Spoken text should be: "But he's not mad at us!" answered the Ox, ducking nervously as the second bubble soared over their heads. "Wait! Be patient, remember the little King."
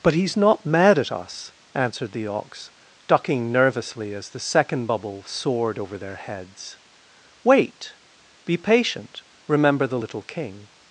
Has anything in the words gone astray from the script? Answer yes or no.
no